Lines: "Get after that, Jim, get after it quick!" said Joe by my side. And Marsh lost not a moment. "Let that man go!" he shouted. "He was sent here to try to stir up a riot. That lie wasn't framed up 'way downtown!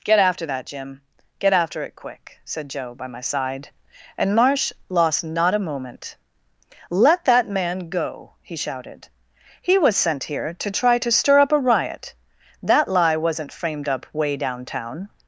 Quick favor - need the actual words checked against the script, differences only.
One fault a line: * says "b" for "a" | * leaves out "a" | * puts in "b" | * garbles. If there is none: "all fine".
all fine